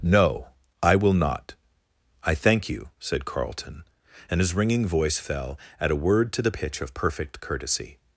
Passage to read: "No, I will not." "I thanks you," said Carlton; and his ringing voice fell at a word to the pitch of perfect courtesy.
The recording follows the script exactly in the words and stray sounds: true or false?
false